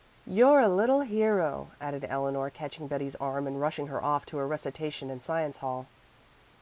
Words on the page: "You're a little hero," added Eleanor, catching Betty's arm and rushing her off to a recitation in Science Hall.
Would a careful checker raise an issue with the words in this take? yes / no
no